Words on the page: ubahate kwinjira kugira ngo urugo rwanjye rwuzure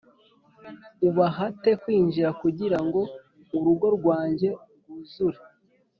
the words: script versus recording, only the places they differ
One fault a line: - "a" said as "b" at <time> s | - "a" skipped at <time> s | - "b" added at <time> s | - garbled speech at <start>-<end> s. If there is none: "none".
none